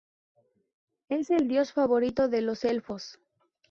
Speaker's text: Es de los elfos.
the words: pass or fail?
fail